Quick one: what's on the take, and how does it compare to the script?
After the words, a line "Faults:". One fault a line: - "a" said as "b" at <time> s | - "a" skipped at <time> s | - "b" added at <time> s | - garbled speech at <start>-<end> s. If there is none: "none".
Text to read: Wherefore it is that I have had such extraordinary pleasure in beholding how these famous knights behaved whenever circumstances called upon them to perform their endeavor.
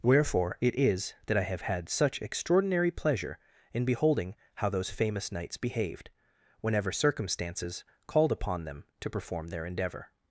Wherefore it is that I have had such extraordinary pleasure in beholding how those famous knights behaved whenever circumstances called upon them to perform their endeavor.
Faults:
- "these" said as "those" at 4.7 s